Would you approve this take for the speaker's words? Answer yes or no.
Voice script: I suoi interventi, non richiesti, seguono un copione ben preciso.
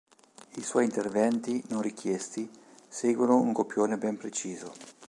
yes